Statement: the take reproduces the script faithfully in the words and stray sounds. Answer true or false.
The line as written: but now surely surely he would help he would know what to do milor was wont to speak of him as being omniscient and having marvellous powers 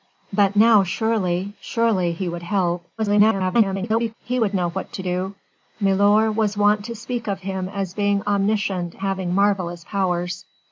false